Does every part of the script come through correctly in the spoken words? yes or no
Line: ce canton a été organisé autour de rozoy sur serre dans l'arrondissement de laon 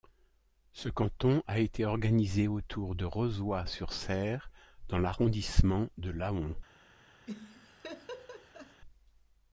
yes